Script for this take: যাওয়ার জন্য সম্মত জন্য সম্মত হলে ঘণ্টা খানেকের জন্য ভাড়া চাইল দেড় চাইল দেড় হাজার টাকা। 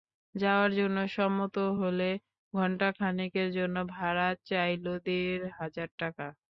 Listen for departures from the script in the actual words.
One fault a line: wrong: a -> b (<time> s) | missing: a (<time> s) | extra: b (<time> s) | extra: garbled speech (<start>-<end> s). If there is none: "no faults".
missing: জন্য সম্মত (1.6 s)
missing: চাইল দেড় (5.4 s)